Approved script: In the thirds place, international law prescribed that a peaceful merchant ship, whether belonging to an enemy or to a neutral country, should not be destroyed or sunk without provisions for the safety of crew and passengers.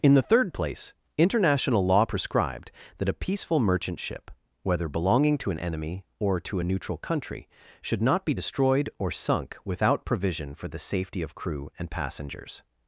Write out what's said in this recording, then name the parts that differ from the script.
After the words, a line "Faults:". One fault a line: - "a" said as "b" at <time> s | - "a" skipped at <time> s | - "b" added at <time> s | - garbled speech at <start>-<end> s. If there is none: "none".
In the third place, international law prescribed that a peaceful merchant ship, whether belonging to an enemy or to a neutral country, should not be destroyed or sunk without provision for the safety of crew and passengers.
Faults:
- "thirds" said as "third" at 0.2 s
- "provisions" said as "provision" at 10.0 s